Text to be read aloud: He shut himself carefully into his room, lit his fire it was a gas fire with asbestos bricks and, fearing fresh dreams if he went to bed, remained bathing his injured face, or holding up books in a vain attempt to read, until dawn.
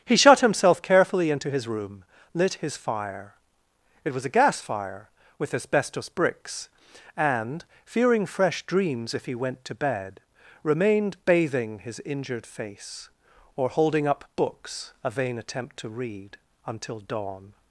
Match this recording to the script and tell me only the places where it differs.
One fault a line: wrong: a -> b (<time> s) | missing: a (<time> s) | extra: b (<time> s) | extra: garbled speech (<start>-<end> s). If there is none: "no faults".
missing: in (14.9 s)